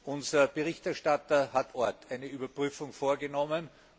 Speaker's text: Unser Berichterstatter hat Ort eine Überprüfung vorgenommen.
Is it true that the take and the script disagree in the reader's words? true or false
false